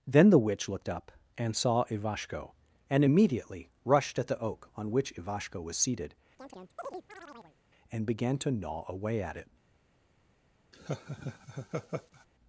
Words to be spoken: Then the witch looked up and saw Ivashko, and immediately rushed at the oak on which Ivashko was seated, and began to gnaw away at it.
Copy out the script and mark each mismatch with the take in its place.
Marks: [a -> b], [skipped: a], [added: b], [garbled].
Then the witch looked up and saw Ivashko, and immediately rushed at the oak on which Ivashko was seated, and began to gnaw away at it.